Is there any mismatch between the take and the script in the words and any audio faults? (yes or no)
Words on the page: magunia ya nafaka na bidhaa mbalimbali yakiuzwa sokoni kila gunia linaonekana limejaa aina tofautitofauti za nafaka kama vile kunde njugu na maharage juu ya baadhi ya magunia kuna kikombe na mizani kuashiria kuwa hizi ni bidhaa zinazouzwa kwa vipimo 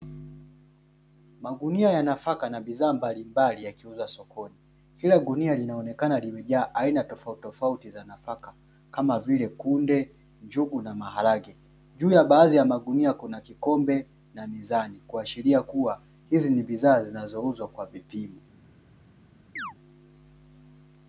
yes